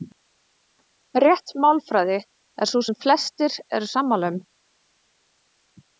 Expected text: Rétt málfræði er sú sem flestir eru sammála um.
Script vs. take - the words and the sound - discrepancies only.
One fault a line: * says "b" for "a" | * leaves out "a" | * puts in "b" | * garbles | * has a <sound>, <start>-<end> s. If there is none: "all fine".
all fine